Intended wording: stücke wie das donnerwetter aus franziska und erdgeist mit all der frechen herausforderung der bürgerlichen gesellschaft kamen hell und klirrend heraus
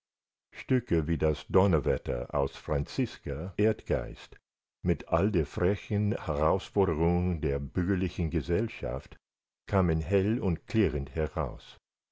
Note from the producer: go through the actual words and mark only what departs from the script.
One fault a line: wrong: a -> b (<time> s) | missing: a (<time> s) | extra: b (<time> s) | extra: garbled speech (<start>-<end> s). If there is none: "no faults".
missing: und (3.5 s)